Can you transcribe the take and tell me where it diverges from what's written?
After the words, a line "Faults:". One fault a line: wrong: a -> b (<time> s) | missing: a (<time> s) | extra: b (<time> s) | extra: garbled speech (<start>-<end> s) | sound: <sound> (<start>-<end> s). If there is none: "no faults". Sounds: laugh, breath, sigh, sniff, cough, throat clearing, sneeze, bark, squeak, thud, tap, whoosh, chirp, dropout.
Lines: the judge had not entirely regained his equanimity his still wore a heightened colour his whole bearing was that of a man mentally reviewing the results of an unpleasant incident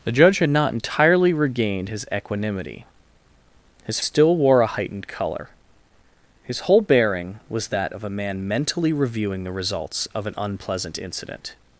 the judge had not entirely regained his equanimity his still wore a heightened colour his whole bearing was that of a man mentally reviewing the results of an unpleasant incident
Faults:
no faults